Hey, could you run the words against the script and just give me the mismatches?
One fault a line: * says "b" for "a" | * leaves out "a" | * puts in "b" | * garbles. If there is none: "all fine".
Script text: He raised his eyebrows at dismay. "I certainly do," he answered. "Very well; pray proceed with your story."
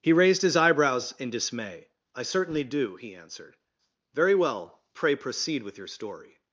* says "in" for "at"